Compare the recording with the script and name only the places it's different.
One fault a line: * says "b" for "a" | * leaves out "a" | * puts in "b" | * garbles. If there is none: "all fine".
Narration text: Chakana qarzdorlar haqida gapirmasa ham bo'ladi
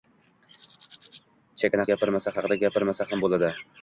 * says "gapirmasa" for "qarzdorlar"